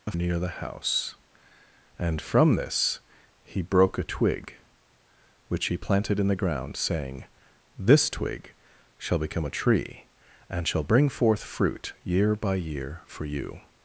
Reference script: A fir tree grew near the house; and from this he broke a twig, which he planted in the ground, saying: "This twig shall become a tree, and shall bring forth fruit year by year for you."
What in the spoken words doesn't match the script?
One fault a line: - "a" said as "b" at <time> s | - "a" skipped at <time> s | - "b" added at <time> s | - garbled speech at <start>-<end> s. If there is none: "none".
- "fir tree grew" skipped at 0.1 s